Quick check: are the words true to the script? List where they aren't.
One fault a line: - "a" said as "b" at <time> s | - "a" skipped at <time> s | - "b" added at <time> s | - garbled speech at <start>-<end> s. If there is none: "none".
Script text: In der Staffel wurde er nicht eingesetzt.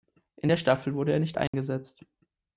none